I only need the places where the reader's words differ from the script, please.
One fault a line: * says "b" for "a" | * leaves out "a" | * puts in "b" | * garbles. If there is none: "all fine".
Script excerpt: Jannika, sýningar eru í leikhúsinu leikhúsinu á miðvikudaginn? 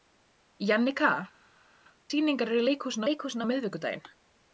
all fine